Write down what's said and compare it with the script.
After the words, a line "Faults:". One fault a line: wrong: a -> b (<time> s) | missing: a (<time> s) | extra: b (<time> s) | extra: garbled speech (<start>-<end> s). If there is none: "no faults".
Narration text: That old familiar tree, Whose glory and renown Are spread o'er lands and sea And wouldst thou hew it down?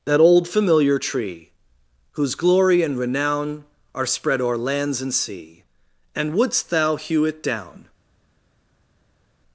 That old familiar tree, Whose glory and renown Are spread o'er lands and sea And wouldst thou hew it down?
Faults:
no faults